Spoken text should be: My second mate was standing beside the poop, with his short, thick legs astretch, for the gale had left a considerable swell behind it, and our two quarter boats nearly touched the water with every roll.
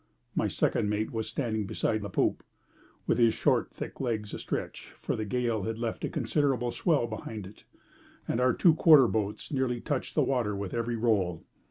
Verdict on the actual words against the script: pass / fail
pass